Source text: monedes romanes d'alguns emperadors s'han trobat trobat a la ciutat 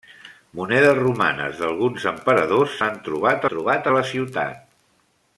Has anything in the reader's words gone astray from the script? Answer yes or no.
no